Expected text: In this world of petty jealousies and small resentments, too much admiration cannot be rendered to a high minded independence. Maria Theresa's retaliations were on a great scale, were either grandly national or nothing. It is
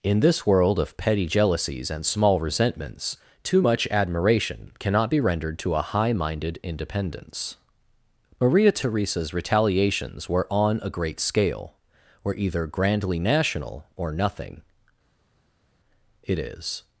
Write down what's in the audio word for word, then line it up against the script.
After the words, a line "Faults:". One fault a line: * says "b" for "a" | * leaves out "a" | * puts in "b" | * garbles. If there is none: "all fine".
In this world of petty jealousies and small resentments, too much admiration cannot be rendered to a high minded independence. Maria Theresa's retaliations were on a great scale, were either grandly national or nothing. It is
Faults:
all fine